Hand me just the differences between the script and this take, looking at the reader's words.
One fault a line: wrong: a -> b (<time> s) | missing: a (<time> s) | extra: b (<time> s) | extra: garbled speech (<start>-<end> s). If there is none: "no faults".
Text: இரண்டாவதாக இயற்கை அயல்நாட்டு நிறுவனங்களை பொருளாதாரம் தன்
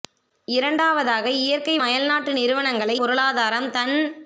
no faults